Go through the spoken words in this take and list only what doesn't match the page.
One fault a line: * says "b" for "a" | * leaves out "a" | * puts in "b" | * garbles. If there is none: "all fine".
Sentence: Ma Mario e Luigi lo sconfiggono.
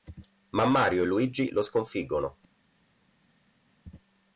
all fine